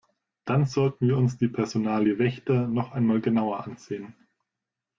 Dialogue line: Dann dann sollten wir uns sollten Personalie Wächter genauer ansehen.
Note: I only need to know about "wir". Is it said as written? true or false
true